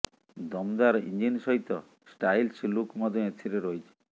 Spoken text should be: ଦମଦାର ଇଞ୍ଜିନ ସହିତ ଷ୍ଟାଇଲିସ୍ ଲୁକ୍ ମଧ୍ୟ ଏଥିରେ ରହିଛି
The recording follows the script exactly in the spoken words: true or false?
true